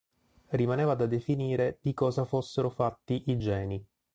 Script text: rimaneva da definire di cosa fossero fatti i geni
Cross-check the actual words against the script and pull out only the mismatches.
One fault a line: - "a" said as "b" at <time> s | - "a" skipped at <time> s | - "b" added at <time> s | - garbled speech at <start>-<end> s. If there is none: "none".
none